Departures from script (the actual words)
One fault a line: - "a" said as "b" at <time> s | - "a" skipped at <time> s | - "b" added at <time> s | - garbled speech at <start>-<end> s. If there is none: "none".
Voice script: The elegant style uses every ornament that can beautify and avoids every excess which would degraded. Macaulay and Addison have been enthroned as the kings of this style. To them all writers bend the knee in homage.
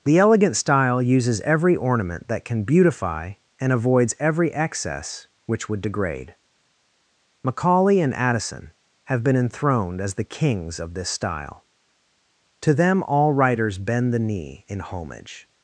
- "degraded" said as "degrade" at 5.8 s